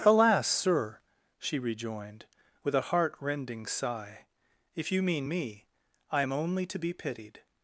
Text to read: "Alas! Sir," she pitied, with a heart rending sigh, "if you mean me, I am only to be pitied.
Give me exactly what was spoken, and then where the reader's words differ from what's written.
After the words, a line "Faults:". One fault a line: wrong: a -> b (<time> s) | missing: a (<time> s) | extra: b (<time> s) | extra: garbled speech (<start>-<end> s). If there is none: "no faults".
"Alas! Sir," she rejoined, with a heart rending sigh, "if you mean me, I am only to be pitied.
Faults:
wrong: pitied -> rejoined (1.6 s)